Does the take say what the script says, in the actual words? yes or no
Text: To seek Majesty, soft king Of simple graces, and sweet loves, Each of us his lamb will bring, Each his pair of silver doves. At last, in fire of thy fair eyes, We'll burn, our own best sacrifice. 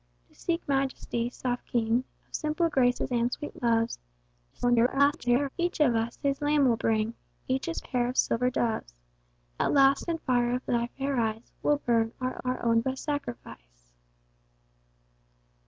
no